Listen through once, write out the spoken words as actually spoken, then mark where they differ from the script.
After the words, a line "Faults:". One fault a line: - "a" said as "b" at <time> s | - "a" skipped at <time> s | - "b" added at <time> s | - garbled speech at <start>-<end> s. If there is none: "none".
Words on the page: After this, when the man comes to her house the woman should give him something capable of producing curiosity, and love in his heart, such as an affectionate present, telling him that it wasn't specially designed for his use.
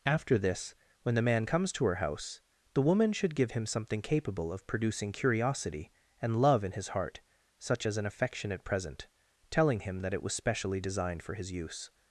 After this, when the man comes to her house the woman should give him something capable of producing curiosity, and love in his heart, such as an affectionate present, telling him that it was specially designed for his use.
Faults:
- "wasn't" said as "was" at 10.2 s